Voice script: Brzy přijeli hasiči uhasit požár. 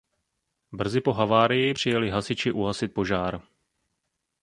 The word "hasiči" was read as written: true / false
true